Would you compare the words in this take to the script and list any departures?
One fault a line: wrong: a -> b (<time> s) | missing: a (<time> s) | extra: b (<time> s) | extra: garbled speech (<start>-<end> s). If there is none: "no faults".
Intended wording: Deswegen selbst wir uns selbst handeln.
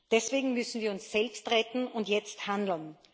wrong: selbst -> müssen (0.5 s)
extra: retten und jetzt (1.5 s)